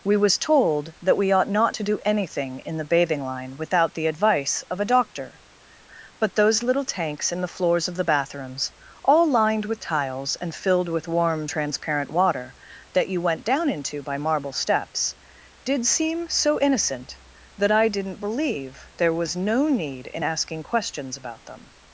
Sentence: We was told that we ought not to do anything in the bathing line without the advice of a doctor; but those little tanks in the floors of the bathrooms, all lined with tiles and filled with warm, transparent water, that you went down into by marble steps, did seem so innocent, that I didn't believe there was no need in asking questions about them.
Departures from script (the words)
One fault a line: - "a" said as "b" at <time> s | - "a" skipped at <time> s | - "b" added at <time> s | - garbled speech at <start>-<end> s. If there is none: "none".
none